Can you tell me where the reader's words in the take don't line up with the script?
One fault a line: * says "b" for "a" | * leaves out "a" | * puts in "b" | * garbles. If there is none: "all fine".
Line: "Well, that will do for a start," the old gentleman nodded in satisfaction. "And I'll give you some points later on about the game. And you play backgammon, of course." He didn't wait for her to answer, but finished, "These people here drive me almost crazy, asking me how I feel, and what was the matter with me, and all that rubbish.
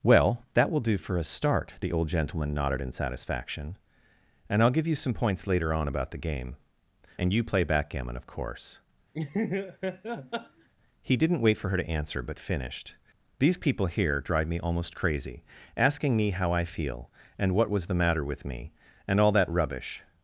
all fine